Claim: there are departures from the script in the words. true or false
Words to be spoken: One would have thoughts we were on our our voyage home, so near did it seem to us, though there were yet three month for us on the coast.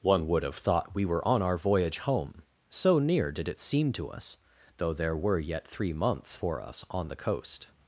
true